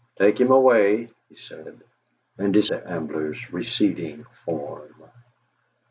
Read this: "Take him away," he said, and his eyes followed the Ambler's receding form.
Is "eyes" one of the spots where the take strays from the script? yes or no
yes